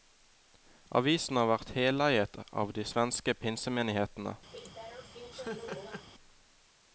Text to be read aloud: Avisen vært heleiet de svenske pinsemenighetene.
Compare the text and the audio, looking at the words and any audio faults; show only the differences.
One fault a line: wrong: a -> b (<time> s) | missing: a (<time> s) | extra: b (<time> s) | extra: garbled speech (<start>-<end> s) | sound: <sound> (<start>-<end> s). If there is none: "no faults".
extra: har (1.4 s)
extra: av (2.6 s)
sound: laugh (4.5-6.1 s)